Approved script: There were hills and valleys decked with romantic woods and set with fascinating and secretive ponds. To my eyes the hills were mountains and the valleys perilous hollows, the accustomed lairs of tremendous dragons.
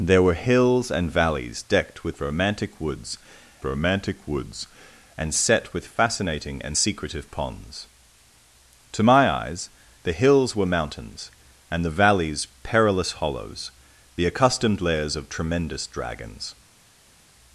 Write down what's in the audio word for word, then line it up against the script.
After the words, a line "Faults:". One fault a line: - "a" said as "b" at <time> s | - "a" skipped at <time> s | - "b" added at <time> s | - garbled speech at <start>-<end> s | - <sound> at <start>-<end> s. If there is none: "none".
There were hills and valleys decked with romantic woods romantic woods and set with fascinating and secretive ponds. To my eyes the hills were mountains and the valleys perilous hollows, the accustomed lairs of tremendous dragons.
Faults:
- "romantic woods" added at 3.6 s